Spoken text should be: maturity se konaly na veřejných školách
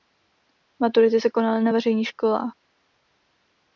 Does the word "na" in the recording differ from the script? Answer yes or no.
no